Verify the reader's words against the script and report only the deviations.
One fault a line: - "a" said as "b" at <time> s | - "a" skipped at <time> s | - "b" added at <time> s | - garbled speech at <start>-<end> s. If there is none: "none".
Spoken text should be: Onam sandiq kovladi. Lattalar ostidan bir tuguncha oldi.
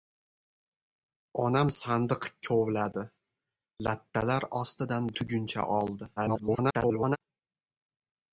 - "bir" skipped at 5.1 s
- garbled speech at 6.2-7.2 s